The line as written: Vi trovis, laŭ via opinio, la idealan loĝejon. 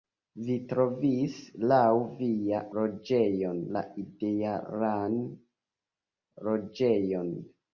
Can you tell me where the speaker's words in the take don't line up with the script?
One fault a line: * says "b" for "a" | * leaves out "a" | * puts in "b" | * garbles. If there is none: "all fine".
* says "loĝejon" for "opinio"